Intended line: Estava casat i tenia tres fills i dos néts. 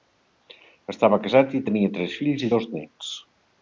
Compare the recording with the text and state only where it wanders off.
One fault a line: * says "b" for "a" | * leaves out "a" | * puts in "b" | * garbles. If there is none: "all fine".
all fine